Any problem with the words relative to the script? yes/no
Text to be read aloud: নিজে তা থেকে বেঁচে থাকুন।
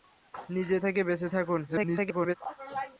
yes